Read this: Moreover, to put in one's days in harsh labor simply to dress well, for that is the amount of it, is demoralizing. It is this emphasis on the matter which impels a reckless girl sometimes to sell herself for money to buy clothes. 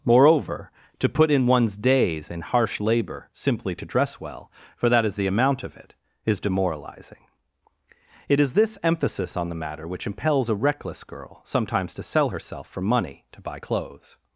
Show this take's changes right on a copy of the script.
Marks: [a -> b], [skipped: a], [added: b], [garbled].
Moreover, to put in one's days in harsh labor simply to dress well, for that is the amount of it, is demoralizing. It is this emphasis on the matter which impels a reckless girl sometimes to sell herself for money to buy clothes.